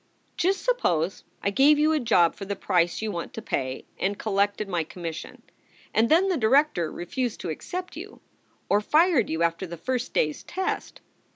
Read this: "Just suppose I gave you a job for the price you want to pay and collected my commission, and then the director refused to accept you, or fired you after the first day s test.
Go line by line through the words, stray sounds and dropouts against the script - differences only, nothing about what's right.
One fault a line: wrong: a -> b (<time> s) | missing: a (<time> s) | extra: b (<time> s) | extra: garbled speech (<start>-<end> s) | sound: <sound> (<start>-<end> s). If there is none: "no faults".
no faults